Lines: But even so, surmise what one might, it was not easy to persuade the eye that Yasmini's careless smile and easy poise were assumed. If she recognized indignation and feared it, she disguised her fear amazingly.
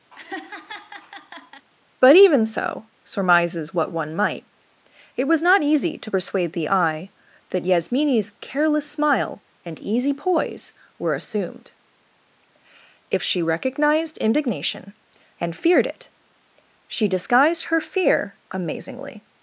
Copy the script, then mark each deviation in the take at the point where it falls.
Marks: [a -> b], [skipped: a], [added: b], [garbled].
But even so, [surmise -> surmises] what one might, it was not easy to persuade the eye that Yasmini's careless smile and easy poise were assumed. If she recognized indignation and feared it, she disguised her fear amazingly.